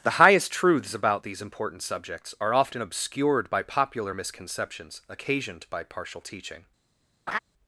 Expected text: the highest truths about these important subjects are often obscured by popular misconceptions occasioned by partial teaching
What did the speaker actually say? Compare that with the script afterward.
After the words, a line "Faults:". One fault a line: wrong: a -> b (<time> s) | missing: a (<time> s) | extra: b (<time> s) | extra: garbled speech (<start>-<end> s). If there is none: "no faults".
the highest truths about these important subjects are often obscured by popular misconceptions occasioned by partial teaching
Faults:
no faults